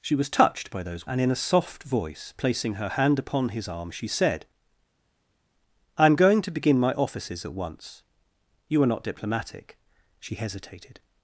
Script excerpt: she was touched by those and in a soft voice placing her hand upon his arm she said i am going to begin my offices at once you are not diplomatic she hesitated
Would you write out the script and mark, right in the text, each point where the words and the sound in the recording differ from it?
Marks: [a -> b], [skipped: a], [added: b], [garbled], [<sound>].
she was touched by those and in a soft voice placing her hand upon his arm she said i am going to begin my offices at once you are not diplomatic she hesitated